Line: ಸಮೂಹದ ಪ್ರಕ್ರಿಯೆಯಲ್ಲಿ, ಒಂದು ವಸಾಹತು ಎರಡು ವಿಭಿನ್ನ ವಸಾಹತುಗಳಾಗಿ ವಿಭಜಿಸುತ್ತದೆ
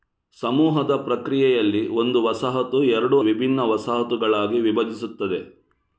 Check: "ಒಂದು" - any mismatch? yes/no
no